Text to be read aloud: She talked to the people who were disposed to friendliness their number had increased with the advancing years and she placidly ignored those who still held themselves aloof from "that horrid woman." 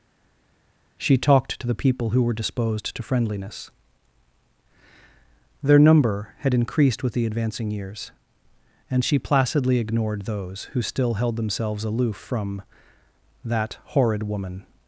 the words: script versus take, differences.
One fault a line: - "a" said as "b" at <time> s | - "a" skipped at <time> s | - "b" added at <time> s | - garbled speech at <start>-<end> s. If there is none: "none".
none